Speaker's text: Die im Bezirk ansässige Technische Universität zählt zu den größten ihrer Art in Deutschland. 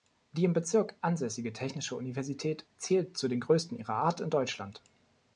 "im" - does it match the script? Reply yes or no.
yes